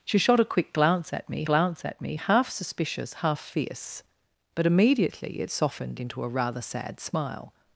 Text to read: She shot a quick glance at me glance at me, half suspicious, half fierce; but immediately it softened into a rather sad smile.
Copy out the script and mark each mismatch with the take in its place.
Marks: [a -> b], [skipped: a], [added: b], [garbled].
She shot a quick glance at me glance at me, half suspicious, half fierce; but immediately it softened into a rather sad smile.